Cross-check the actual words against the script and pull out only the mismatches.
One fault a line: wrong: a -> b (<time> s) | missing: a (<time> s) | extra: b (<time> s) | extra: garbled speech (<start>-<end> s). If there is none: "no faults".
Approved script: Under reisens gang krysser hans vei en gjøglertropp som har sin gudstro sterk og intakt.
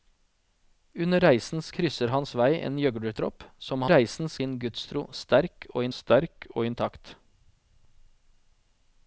missing: gang (1.7 s)
wrong: har -> reisens (3.9 s)
extra: sterk og (6.0 s)